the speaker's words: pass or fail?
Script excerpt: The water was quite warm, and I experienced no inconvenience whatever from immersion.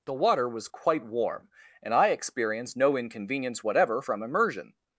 pass